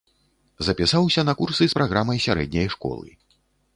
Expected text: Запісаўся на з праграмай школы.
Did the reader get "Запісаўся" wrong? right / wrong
right